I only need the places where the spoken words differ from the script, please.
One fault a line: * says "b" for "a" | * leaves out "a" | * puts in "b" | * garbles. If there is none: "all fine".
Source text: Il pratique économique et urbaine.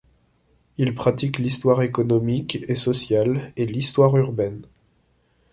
* puts in "l'histoire"
* puts in "sociale et l'histoire"